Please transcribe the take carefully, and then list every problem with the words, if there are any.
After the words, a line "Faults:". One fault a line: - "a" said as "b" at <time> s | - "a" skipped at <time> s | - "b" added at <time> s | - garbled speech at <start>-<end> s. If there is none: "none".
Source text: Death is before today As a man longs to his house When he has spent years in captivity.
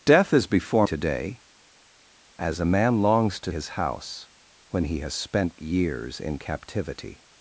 Death is before today As a man longs to his house When he has spent years in captivity.
Faults:
none